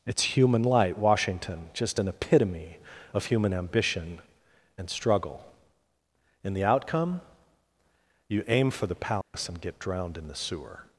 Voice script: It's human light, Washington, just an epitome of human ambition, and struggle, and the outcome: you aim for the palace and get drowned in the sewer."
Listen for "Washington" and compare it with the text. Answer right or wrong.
right